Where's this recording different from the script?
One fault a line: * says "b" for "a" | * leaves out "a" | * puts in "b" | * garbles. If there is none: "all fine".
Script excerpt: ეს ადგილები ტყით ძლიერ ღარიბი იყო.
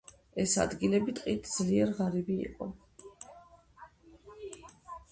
all fine